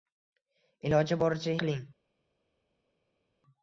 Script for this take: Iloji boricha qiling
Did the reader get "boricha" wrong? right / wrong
right